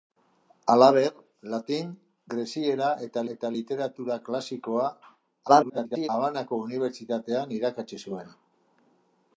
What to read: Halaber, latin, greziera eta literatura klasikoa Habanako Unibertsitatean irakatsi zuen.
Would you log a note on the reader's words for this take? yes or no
yes